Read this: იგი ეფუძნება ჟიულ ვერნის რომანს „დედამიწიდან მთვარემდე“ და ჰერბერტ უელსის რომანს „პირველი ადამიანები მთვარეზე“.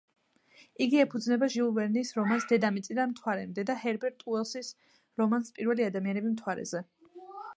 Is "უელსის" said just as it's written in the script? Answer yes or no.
yes